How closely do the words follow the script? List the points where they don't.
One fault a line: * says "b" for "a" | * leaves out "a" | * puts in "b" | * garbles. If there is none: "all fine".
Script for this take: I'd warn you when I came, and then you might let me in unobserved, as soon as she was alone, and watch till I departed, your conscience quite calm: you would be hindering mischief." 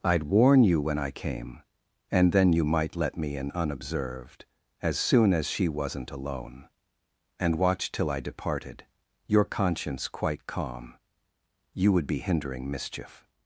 * says "wasn't" for "was"